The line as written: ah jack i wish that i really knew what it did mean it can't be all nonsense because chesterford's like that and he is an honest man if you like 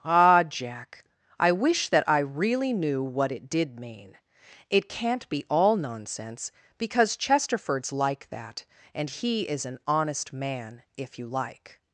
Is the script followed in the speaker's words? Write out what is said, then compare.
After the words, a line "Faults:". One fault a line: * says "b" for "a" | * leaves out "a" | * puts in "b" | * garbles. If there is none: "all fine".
ah jack i wish that i really knew what it did mean it can't be all nonsense because chesterford's like that and he is an honest man if you like
Faults:
all fine